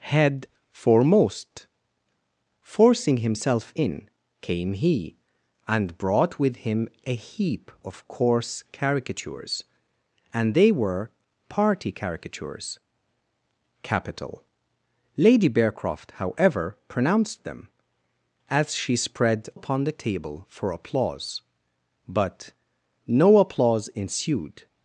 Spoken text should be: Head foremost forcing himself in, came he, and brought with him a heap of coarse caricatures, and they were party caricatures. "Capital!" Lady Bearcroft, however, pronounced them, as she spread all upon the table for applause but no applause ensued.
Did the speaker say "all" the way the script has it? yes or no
no